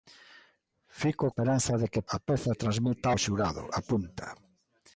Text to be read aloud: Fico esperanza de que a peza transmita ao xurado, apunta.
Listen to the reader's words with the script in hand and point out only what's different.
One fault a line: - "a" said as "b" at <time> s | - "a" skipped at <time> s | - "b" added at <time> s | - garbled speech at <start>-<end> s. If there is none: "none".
none